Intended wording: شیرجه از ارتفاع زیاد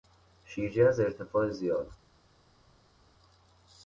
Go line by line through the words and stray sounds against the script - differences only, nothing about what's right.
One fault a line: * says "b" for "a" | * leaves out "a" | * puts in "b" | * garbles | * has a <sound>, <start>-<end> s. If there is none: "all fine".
all fine